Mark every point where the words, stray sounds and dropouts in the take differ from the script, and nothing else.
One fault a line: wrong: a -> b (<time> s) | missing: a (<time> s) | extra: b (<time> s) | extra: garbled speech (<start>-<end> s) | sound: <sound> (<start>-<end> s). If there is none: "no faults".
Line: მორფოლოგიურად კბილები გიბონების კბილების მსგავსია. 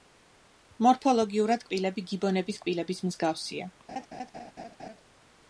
sound: laugh (3.9-5.0 s)